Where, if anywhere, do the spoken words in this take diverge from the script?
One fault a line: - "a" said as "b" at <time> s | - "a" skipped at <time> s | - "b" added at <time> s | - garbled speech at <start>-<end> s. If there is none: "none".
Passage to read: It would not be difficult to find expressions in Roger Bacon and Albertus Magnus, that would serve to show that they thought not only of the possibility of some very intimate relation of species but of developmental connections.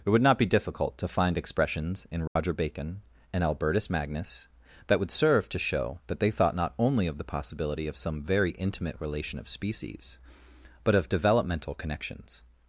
none